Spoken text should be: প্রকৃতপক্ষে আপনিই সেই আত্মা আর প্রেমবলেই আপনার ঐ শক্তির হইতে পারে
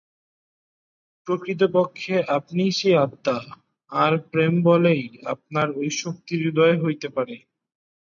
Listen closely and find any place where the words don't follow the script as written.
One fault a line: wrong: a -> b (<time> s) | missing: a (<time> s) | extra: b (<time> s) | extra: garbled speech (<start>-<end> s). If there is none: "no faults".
extra: উদয় (6.5 s)